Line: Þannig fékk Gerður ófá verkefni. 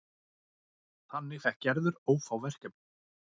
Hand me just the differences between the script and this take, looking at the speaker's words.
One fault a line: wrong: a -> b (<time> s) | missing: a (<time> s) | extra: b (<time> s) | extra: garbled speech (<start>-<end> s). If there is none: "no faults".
no faults